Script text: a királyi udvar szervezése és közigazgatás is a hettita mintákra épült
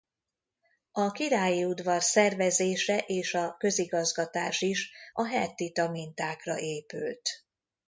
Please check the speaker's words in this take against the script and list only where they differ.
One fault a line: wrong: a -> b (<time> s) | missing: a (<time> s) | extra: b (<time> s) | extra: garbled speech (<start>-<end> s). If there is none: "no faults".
extra: a (3.3 s)